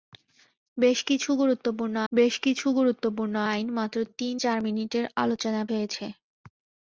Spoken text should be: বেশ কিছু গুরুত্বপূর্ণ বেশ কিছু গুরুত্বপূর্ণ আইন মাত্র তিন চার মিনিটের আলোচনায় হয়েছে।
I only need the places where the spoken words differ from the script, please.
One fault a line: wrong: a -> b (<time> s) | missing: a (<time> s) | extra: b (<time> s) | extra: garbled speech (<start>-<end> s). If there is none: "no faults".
no faults